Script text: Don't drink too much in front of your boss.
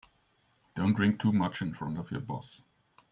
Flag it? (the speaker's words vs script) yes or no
no